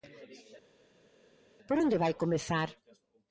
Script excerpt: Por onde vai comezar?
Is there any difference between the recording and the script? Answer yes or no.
no